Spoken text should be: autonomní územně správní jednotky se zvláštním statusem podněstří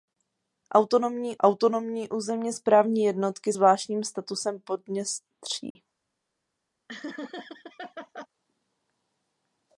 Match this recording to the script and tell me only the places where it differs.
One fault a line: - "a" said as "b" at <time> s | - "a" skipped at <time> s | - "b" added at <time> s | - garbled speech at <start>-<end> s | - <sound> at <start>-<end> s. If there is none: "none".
- "autonomní" added at 1.4 s
- "se" skipped at 3.5 s
- dropout at 5.7-5.8 s
- laugh at 6.9-8.3 s